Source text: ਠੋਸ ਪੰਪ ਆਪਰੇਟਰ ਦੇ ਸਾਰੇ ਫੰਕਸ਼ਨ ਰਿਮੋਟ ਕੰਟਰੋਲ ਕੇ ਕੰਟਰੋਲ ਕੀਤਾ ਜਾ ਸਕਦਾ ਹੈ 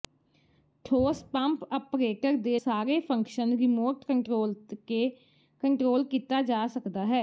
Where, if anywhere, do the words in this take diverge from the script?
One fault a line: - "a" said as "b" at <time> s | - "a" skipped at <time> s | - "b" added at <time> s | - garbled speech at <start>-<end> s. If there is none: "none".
none